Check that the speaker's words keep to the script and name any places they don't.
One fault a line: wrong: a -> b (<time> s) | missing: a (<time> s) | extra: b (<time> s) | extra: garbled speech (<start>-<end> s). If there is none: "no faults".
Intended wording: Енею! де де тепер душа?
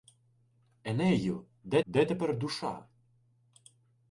no faults